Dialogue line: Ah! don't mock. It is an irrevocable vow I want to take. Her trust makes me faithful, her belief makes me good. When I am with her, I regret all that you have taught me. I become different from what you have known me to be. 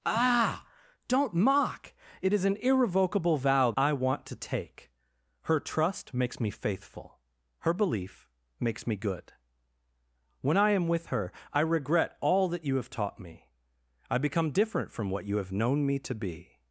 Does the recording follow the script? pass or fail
pass